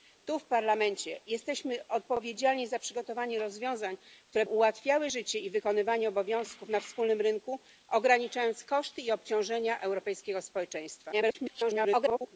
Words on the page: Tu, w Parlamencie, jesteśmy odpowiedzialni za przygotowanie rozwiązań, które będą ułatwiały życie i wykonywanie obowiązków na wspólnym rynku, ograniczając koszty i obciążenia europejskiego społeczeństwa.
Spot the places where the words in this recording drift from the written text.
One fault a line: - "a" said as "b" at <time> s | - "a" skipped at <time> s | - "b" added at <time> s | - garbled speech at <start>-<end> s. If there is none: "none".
- "będą" skipped at 4.5 s
- garbled speech at 11.1-12.4 s